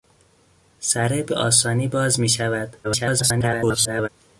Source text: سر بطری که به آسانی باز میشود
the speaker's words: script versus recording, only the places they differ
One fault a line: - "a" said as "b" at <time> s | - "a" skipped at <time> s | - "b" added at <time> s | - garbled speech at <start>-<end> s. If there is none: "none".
- "بطری که" skipped at 1.2 s
- garbled speech at 2.8-4.1 s